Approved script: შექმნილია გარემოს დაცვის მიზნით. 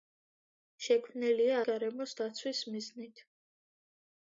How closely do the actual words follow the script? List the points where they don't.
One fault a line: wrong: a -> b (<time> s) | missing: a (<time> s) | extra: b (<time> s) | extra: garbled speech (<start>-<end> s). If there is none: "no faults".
no faults